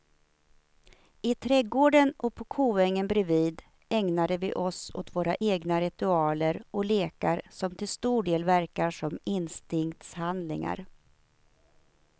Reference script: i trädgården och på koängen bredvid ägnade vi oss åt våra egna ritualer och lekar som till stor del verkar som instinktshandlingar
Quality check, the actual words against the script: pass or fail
pass